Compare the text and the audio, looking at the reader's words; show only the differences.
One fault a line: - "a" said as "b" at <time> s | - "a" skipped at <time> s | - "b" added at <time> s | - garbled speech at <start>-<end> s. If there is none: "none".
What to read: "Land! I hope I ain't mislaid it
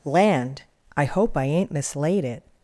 none